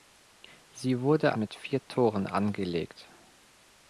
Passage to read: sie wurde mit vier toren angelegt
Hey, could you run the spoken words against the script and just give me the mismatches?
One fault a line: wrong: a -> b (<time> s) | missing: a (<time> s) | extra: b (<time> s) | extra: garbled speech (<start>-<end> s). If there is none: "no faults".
no faults